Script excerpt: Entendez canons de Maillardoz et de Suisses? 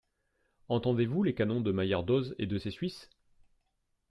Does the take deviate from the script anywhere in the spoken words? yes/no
yes